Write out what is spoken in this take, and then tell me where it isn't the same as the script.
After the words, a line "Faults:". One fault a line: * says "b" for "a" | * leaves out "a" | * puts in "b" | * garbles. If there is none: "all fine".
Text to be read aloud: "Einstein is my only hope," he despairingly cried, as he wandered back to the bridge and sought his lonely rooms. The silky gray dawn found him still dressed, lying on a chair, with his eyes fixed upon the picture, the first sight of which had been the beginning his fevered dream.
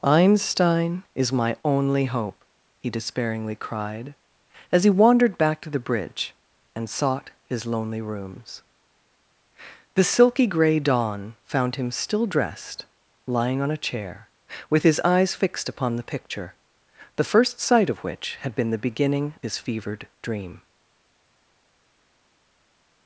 "Einstein is my only hope," he despairingly cried, as he wandered back to the bridge and sought his lonely rooms. The silky gray dawn found him still dressed, lying on a chair, with his eyes fixed upon the picture, the first sight of which had been the beginning his fevered dream.
Faults:
all fine